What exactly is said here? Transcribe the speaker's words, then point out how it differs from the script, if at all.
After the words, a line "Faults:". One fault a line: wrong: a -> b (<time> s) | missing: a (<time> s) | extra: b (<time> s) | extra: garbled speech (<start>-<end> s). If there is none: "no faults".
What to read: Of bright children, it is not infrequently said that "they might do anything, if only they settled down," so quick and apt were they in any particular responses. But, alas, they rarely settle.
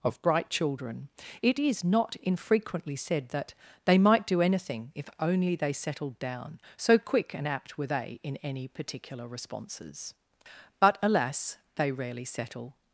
Of bright children, it is not infrequently said that "they might do anything, if only they settled down," so quick and apt were they in any particular responses. But, alas, they rarely settle.
Faults:
no faults